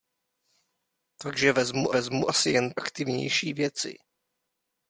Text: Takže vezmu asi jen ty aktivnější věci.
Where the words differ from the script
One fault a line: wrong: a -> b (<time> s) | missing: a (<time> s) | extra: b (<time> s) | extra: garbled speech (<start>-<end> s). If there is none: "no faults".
extra: vezmu (1.9 s)
missing: ty (2.7 s)